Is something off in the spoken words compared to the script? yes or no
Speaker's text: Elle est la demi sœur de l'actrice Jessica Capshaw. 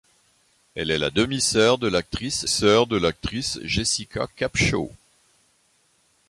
yes